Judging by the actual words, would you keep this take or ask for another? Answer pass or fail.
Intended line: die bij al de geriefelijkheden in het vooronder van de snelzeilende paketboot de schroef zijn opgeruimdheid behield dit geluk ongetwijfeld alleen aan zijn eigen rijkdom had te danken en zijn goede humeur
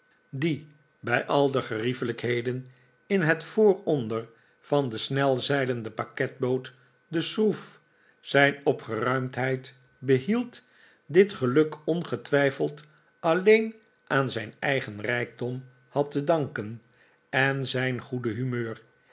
pass